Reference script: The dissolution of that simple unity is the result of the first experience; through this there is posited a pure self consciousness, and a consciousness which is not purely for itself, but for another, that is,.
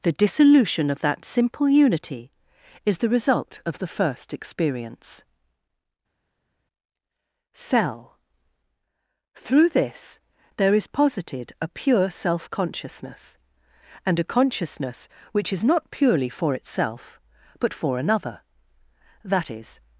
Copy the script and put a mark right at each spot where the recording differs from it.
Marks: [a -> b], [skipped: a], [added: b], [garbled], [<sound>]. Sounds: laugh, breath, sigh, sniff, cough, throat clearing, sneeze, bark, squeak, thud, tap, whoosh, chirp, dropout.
The dissolution of that simple unity is the result of the first experience; [added: cell] through this there is posited a pure self consciousness, and a consciousness which is not purely for itself, but for another, that is,.